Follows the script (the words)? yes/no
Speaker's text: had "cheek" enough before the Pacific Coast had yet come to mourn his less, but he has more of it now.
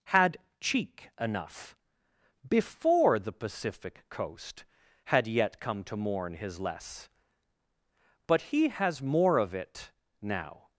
yes